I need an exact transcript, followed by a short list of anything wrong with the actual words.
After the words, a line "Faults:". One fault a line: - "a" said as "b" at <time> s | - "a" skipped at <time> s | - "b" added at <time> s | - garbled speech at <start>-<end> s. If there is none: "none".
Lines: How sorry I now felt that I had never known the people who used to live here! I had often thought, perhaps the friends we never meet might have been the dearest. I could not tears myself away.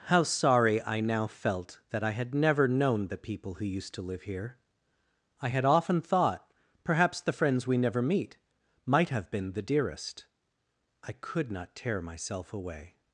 How sorry I now felt that I had never known the people who used to live here! I had often thought, perhaps the friends we never meet might have been the dearest. I could not tear myself away.
Faults:
- "tears" said as "tear" at 11.8 s